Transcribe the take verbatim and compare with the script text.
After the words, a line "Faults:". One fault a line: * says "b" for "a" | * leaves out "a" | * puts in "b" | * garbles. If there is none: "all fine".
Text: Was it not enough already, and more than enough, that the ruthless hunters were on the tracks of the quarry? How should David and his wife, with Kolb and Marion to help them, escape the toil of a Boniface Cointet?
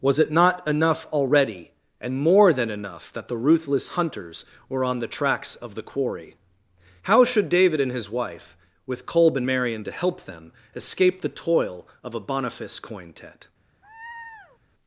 Was it not enough already, and more than enough, that the ruthless hunters were on the tracks of the quarry? How should David and his wife, with Kolb and Marion to help them, escape the toil of a Boniface Cointet?
Faults:
all fine